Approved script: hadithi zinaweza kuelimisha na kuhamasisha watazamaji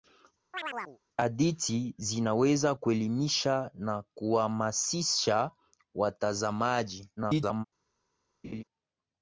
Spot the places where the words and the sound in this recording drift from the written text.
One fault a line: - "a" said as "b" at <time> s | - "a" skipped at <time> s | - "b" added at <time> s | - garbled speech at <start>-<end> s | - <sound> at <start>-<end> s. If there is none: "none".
- chirp at 0.5-1.0 s
- garbled speech at 7.2-7.6 s
- laugh at 8.4-8.6 s